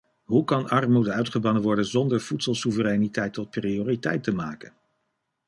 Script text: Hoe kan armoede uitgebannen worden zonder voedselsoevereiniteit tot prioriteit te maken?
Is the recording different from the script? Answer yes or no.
no